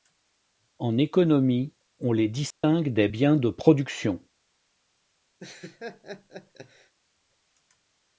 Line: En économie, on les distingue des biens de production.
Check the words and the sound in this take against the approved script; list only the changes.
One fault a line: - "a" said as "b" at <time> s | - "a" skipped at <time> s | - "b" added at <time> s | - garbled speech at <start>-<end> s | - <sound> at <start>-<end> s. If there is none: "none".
- dropout at 2.5-2.6 s
- laugh at 5.4-6.9 s